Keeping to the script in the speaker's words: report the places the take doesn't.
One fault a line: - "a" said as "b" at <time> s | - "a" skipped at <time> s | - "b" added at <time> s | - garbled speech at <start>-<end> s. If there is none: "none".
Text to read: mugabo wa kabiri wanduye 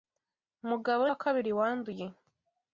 none